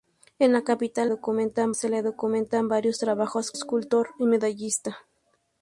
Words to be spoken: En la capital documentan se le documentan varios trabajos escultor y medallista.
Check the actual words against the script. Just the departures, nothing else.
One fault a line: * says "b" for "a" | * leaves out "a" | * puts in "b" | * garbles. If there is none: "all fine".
all fine